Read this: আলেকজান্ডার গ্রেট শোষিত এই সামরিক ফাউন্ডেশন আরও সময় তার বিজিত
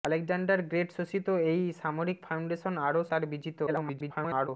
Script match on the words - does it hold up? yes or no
no